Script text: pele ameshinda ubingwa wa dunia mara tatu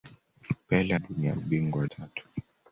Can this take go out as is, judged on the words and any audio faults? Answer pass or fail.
fail